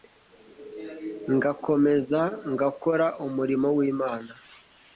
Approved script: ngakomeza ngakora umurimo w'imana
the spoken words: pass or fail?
pass